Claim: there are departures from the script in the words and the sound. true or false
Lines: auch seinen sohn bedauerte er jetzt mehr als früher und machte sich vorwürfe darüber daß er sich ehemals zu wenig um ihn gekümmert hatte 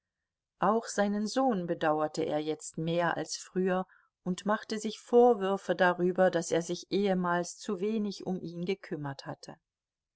false